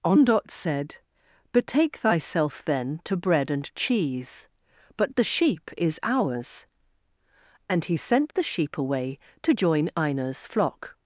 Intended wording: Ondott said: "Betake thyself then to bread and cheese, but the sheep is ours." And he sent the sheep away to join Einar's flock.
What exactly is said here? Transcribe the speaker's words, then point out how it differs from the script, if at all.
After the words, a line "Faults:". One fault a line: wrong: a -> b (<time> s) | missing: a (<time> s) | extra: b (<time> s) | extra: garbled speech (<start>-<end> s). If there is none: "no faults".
Ondott said: "Betake thyself then to bread and cheese, but the sheep is ours." And he sent the sheep away to join Einar's flock.
Faults:
no faults